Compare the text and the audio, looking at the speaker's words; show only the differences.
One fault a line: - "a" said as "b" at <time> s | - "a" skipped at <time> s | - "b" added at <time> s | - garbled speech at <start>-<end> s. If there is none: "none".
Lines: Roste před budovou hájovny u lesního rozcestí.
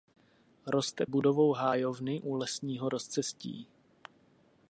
- "před" skipped at 1.1 s